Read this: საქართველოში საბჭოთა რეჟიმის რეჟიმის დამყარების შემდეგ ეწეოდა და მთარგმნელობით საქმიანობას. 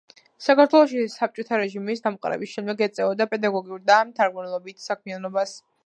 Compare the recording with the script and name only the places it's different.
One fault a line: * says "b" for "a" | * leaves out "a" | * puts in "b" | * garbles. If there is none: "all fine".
* leaves out "რეჟიმის"
* puts in "პედაგოგიურ"